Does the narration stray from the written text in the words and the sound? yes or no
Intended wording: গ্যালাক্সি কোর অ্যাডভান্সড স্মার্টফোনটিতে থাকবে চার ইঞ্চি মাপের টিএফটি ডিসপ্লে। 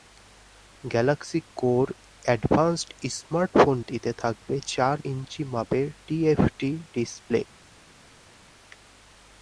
no